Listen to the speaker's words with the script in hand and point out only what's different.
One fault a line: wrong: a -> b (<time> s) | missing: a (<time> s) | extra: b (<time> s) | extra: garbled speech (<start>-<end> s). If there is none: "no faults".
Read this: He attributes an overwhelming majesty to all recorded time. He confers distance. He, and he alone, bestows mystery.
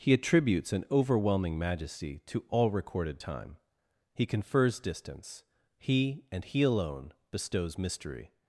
no faults